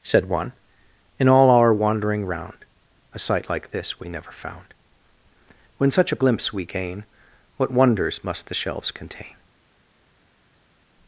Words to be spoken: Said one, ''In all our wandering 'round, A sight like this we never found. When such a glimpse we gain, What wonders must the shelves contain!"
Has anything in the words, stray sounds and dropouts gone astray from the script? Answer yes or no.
no